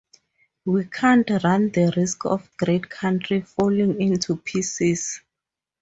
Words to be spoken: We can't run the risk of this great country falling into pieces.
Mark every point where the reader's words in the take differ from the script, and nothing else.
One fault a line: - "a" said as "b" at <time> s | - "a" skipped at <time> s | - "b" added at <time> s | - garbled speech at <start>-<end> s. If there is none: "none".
- "this" skipped at 2.5 s